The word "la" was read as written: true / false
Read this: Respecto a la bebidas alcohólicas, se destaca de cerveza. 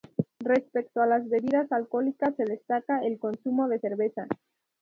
false